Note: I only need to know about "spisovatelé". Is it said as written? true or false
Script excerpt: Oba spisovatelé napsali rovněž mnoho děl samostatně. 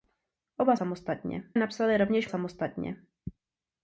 false